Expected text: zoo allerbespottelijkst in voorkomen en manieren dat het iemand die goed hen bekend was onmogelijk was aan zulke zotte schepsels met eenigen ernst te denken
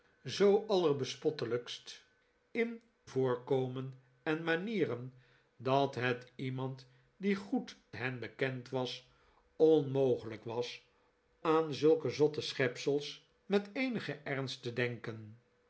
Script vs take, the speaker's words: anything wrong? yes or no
no